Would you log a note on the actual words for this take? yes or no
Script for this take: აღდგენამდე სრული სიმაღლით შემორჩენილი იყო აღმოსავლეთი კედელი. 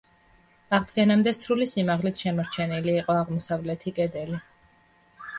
no